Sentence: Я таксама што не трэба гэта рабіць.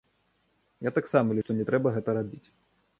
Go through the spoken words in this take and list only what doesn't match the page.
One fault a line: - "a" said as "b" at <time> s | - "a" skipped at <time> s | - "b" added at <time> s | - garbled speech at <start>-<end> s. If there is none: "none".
none